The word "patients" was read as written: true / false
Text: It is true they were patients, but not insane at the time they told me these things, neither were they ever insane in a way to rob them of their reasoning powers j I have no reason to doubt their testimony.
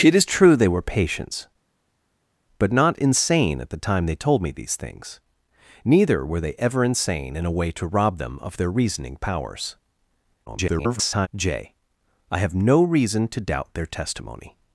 true